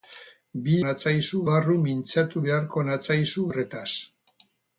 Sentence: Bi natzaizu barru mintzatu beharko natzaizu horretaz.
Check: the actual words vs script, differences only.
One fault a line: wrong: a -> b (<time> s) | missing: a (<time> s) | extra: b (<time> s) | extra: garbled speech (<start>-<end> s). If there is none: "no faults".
no faults